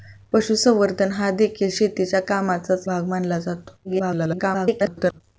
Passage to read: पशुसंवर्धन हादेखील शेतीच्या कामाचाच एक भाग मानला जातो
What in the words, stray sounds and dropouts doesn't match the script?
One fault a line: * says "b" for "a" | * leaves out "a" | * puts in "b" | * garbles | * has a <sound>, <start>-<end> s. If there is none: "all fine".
* leaves out "एक"
* garbles